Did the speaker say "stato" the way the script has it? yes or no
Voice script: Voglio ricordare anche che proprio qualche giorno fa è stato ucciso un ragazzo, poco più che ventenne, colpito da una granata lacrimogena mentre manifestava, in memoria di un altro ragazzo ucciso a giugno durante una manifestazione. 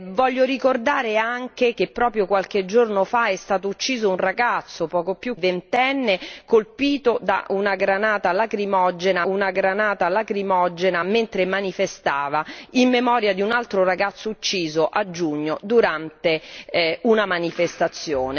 yes